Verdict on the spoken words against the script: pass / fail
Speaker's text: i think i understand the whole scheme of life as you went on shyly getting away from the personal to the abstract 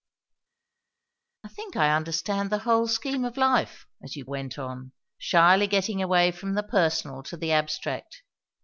pass